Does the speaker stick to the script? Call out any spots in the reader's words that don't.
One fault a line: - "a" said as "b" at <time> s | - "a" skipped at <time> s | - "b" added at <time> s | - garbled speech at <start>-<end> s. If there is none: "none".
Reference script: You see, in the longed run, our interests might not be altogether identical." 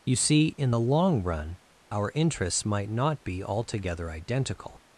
- "longed" said as "long" at 0.8 s